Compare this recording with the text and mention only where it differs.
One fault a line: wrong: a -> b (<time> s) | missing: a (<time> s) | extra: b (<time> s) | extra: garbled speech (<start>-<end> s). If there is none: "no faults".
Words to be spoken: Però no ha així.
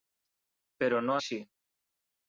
no faults